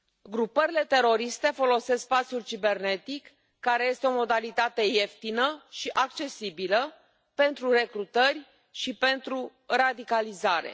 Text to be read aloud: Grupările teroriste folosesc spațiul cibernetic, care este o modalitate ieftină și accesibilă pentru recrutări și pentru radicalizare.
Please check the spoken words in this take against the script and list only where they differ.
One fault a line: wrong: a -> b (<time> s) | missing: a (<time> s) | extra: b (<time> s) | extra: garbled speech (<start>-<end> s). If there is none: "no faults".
no faults